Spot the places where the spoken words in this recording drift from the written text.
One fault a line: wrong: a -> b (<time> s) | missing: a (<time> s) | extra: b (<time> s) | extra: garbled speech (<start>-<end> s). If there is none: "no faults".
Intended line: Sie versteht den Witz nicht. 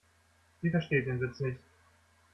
no faults